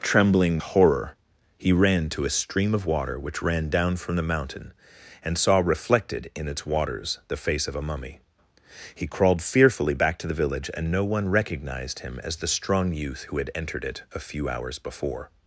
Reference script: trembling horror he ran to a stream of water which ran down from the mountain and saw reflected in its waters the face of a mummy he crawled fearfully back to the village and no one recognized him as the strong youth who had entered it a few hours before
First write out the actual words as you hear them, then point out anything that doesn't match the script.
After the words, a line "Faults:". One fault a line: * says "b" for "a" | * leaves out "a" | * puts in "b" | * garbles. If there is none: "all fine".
trembling horror he ran to a stream of water which ran down from the mountain and saw reflected in its waters the face of a mummy he crawled fearfully back to the village and no one recognized him as the strong youth who had entered it a few hours before
Faults:
all fine